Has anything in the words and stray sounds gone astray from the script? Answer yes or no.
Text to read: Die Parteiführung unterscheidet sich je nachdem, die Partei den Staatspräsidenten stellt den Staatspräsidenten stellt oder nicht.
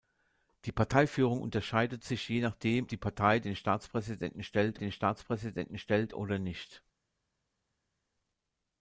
no